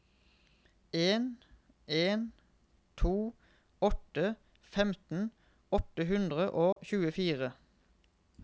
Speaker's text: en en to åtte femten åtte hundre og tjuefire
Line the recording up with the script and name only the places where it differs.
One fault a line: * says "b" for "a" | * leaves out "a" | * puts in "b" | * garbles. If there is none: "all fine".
all fine